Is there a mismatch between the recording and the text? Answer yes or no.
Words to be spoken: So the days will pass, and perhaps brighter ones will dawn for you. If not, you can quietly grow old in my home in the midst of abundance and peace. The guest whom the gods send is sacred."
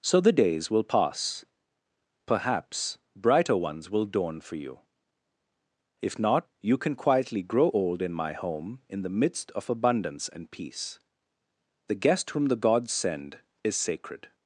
yes